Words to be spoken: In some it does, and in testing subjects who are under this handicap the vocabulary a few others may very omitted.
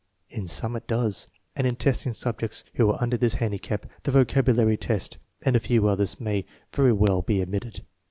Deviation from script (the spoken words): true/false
true